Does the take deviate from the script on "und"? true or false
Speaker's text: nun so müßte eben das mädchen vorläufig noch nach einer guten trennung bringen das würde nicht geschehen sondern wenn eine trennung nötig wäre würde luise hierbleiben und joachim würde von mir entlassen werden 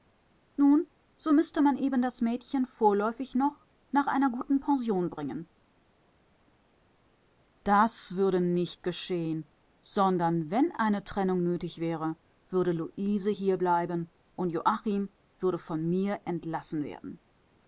false